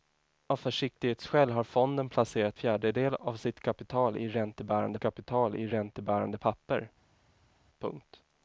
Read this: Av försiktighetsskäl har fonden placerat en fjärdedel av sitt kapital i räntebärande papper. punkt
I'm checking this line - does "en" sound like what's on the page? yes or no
no